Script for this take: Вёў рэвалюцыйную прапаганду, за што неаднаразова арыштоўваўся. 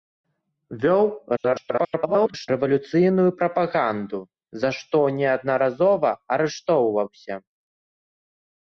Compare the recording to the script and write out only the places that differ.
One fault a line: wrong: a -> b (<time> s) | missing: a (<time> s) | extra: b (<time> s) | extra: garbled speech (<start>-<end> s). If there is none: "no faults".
extra: garbled speech (1.4-2.5 s)